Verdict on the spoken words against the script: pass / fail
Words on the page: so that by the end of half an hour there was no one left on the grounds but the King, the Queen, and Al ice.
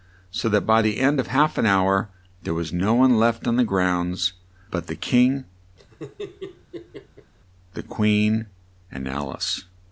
pass